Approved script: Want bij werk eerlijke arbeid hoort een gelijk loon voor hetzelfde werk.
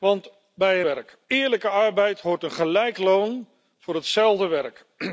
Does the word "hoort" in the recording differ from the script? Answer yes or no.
no